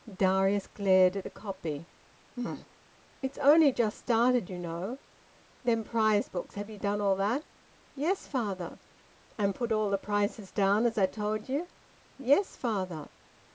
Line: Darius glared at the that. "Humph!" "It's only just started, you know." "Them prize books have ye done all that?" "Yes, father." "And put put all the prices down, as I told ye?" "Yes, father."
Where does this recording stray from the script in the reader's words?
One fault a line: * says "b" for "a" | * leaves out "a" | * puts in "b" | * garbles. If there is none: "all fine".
* says "copy" for "that"
* leaves out "put"